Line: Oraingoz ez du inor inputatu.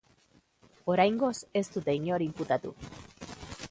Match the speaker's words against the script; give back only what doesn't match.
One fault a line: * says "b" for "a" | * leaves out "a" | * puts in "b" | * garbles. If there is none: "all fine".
* says "dute" for "du"